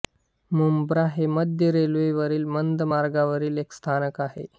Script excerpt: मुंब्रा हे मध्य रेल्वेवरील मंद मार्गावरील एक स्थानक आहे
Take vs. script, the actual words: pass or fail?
pass